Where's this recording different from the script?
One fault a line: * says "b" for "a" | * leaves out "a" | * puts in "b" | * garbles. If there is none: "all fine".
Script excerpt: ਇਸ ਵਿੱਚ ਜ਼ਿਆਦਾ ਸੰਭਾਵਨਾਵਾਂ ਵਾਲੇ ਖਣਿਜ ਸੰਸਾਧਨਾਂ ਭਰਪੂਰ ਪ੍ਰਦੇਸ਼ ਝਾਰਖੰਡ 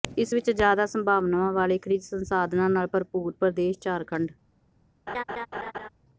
* puts in "ਨਾਲ"